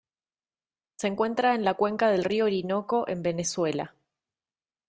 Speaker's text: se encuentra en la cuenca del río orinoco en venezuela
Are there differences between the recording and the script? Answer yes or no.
no